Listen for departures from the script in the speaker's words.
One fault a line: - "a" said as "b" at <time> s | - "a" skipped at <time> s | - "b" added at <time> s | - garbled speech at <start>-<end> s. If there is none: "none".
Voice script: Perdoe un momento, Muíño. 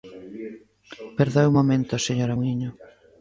- "señora" added at 2.1 s